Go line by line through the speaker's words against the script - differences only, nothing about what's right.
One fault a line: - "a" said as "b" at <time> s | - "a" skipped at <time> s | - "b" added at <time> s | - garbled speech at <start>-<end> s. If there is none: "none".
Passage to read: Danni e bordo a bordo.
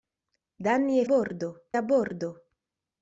none